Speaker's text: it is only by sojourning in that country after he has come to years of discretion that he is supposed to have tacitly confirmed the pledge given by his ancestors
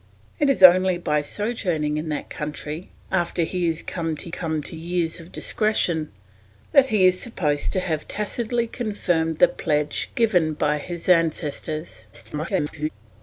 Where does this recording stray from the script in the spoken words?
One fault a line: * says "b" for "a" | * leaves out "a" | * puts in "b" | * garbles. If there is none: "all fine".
* puts in "come to"
* garbles